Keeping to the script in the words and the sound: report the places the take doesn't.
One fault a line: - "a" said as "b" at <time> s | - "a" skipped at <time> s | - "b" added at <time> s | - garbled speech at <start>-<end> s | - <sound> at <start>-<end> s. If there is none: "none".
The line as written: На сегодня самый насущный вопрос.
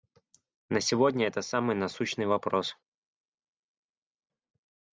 - "это" added at 1.3 s